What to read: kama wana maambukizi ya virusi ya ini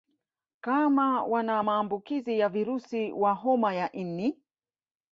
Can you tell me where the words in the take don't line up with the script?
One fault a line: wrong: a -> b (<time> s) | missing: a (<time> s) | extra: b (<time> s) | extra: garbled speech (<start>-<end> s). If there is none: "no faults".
extra: wa homa (3.1 s)